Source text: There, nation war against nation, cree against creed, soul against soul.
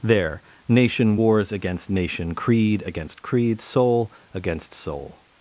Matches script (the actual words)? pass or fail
fail